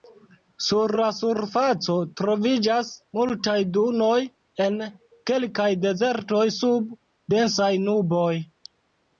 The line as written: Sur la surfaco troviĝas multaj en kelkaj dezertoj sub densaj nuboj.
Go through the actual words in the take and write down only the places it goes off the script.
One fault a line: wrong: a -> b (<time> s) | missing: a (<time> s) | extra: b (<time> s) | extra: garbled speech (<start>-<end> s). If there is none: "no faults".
extra: dunoj (3.8 s)